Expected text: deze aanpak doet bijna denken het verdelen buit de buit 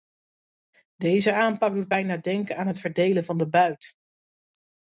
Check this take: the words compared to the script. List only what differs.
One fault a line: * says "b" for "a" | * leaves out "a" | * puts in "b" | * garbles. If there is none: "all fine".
* puts in "aan"
* says "van" for "buit"